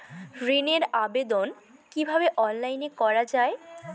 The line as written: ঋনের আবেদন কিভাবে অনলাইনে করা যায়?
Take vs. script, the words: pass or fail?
pass